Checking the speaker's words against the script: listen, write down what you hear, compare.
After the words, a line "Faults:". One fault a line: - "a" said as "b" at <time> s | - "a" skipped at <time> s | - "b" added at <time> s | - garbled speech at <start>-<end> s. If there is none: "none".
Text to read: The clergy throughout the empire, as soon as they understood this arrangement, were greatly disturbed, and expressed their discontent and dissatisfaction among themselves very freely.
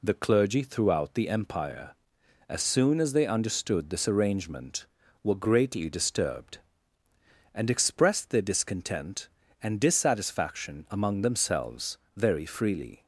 The clergy throughout the empire, as soon as they understood this arrangement, were greatly disturbed, and expressed their discontent and dissatisfaction among themselves very freely.
Faults:
none